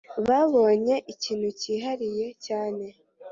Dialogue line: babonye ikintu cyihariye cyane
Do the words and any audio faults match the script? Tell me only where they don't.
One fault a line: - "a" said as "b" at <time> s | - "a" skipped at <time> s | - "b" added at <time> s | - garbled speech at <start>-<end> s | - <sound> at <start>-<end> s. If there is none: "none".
none